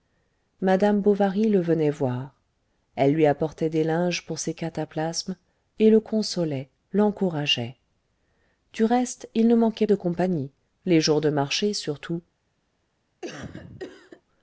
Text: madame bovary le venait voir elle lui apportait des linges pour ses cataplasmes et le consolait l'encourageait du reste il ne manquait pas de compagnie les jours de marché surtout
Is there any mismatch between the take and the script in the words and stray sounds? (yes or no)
yes